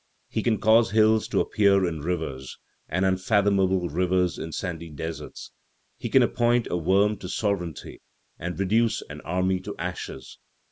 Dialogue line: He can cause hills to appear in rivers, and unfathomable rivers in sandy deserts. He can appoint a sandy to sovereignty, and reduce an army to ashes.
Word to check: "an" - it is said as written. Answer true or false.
true